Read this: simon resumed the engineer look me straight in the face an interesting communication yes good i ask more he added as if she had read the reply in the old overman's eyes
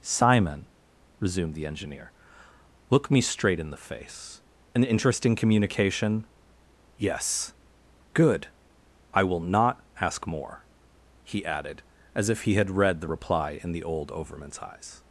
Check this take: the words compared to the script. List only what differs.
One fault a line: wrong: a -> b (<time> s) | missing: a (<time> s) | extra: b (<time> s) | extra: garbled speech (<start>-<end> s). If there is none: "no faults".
extra: will not (9.2 s)
wrong: she -> he (12.4 s)